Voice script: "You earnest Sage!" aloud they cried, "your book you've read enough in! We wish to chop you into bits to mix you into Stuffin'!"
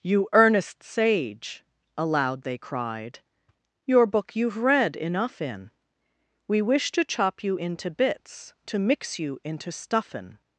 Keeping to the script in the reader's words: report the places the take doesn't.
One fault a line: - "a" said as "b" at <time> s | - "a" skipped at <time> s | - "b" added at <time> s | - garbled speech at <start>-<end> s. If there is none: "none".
none